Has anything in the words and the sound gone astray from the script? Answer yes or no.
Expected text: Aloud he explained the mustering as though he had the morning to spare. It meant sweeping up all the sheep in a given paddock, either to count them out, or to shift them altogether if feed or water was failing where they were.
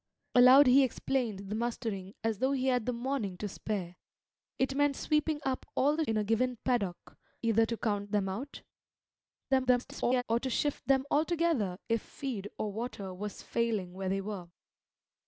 yes